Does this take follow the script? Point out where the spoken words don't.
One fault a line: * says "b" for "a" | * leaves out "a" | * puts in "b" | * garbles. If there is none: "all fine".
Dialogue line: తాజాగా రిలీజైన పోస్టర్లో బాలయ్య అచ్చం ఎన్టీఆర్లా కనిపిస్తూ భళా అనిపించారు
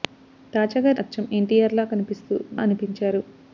* leaves out "రిలీజైన పోస్టర్లో బాలయ్య"
* leaves out "భళా"